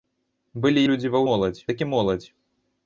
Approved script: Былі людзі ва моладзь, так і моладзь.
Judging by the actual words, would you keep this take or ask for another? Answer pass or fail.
pass